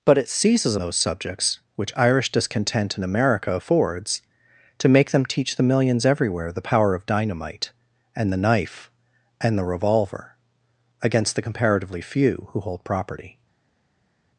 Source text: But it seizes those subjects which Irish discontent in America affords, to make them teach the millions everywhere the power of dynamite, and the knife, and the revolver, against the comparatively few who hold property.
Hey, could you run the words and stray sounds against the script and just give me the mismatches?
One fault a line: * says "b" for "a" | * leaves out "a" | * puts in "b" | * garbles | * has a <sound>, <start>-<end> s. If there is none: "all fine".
all fine